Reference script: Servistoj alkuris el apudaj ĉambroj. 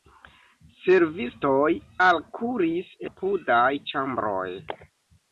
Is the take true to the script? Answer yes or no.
no